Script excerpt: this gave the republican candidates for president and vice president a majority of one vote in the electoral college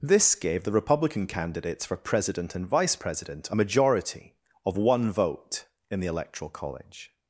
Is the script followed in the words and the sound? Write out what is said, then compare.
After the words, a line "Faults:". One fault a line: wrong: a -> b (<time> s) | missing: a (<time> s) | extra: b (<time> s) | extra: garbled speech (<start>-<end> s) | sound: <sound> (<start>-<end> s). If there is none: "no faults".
this gave the republican candidates for president and vice president a majority of one vote in the electoral college
Faults:
no faults